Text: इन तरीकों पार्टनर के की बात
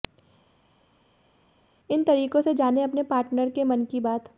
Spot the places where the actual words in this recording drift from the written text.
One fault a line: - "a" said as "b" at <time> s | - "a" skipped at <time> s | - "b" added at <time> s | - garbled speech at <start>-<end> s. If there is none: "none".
- "से जानें अपने" added at 2.4 s
- "मन" added at 3.6 s